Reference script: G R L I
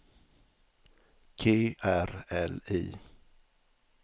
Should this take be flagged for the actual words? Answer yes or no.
no